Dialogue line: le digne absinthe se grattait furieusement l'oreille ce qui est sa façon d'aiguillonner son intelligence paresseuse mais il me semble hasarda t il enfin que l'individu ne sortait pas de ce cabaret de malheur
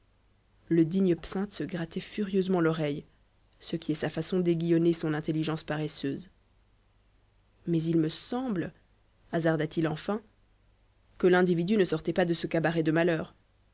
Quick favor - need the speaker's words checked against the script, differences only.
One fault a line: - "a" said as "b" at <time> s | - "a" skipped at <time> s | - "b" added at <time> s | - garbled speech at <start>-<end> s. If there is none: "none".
none